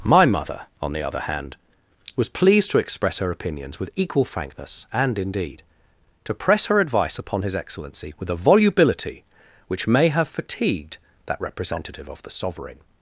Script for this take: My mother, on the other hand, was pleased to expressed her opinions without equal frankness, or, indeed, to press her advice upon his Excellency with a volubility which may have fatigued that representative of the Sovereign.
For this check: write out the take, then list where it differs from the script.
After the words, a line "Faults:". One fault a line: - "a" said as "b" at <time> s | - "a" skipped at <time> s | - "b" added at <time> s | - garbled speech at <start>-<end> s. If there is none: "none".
My mother, on the other hand, was pleased to express her opinions with equal frankness, and, indeed, to press her advice upon his Excellency with a volubility which may have fatigued that representative of the Sovereign.
Faults:
- "expressed" said as "express" at 2.8 s
- "without" said as "with" at 3.8 s
- "or" said as "and" at 4.9 s